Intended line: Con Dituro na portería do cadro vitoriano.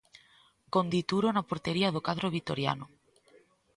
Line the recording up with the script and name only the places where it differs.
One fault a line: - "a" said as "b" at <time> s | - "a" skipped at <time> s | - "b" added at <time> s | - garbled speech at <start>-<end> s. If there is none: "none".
none